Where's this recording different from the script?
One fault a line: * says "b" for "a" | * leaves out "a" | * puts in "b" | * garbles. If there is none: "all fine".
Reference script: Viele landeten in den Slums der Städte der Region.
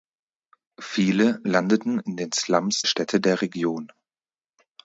* leaves out "der"